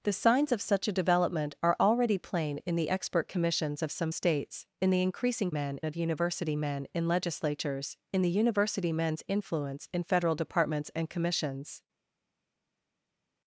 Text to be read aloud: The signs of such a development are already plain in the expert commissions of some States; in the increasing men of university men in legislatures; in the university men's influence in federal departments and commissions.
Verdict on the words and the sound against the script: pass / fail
pass